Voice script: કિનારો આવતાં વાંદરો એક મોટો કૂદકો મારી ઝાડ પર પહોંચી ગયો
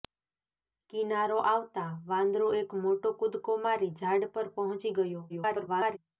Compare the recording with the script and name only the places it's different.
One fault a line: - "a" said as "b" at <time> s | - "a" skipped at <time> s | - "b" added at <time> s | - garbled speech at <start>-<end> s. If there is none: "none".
- garbled speech at 5.3-6.0 s